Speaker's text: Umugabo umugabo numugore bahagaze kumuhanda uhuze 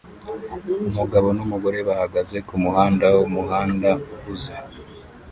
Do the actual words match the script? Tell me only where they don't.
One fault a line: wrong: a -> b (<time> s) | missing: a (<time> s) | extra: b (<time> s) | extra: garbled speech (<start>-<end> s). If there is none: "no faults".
missing: umugabo (1.3 s)
extra: wumuhanda (3.2 s)